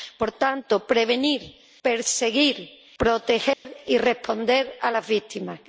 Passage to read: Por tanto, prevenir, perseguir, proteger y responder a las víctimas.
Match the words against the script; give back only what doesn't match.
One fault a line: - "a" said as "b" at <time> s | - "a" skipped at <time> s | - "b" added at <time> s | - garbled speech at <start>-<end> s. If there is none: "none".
none